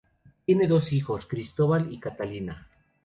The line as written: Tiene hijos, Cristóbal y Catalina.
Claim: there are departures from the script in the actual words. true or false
true